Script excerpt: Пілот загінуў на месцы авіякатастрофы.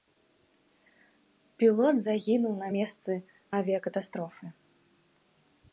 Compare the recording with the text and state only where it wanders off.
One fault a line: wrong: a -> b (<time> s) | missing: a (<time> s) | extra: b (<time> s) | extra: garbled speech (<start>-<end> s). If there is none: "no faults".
no faults